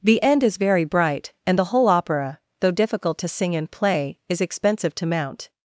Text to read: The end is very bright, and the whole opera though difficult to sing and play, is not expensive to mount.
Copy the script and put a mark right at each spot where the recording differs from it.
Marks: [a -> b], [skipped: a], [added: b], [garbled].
The end is very bright, and the whole opera though difficult to sing and play, is [skipped: not] expensive to mount.